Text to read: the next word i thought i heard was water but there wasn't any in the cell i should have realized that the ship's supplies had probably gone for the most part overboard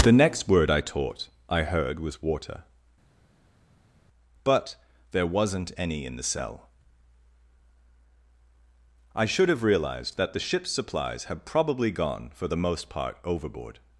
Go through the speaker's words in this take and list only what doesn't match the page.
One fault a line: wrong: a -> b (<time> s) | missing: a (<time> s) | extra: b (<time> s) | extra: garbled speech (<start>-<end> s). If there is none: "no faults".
wrong: thought -> taught (0.8 s)